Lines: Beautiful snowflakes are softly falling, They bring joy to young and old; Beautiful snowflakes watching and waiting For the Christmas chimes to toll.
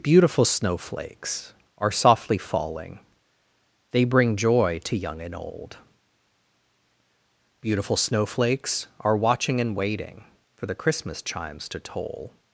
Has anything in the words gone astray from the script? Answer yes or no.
yes